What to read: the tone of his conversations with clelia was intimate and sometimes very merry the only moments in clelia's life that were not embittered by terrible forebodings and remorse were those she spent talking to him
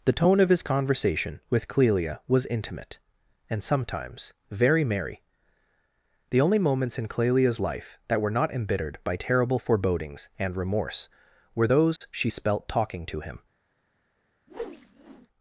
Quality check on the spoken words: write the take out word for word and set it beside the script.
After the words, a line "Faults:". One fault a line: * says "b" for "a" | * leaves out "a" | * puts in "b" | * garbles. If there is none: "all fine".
the tone of his conversation with clelia was intimate and sometimes very merry the only moments in clelia's life that were not embittered by terrible forebodings and remorse were those she spelt talking to him
Faults:
* says "conversation" for "conversations"
* says "spelt" for "spent"